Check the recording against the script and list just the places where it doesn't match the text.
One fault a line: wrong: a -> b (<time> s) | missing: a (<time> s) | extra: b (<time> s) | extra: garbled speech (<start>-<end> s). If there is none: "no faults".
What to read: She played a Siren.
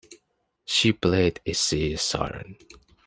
extra: Sea (1.5 s)